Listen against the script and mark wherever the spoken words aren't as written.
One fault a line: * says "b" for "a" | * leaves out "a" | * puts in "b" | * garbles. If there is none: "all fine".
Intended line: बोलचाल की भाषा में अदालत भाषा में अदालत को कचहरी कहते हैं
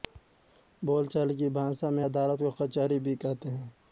* leaves out "भाषा में अदालत"
* puts in "भी"